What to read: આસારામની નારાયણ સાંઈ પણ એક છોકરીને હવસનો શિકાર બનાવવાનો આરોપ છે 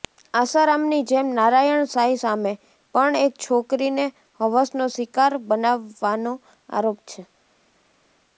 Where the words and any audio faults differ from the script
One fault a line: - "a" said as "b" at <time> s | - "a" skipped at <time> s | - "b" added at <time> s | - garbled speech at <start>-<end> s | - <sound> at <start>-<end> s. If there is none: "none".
- "જેમ" added at 1.1 s
- "સામે" added at 2.2 s